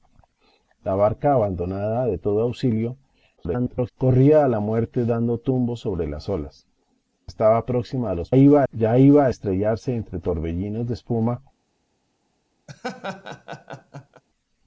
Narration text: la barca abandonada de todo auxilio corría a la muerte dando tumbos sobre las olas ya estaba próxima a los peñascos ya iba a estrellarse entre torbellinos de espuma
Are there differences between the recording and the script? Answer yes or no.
yes